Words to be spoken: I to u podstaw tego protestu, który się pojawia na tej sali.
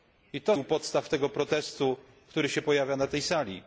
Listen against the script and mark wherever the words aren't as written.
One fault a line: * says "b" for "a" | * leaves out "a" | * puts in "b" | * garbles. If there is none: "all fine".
all fine